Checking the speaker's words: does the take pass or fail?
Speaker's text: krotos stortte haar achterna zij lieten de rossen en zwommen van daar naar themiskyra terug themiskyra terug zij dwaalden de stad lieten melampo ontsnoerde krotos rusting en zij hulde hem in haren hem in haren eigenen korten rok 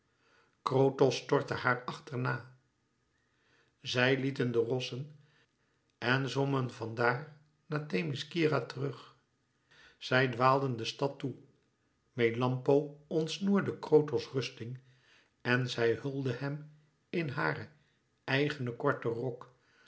fail